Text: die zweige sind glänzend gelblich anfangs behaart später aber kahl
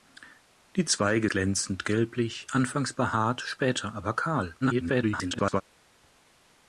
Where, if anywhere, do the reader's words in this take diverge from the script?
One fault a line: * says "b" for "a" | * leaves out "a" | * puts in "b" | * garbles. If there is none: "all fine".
* leaves out "sind"
* garbles